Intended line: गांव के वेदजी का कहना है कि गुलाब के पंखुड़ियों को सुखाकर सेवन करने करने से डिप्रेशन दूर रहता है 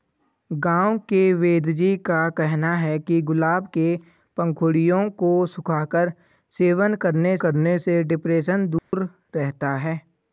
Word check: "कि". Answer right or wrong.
right